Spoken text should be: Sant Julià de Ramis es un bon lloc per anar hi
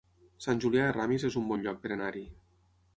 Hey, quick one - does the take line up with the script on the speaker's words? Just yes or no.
yes